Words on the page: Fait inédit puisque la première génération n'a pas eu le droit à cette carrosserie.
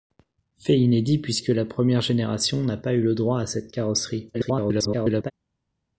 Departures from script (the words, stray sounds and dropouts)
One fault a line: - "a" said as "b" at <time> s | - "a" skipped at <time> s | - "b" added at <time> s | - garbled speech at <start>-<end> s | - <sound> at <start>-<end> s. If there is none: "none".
- garbled speech at 4.3-5.3 s